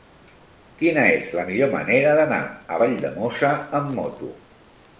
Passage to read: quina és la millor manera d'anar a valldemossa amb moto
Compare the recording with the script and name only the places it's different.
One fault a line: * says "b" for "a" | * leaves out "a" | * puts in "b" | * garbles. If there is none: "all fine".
all fine